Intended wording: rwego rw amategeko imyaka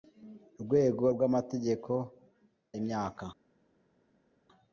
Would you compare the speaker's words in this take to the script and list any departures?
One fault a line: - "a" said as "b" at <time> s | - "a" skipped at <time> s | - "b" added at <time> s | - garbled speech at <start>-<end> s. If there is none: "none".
none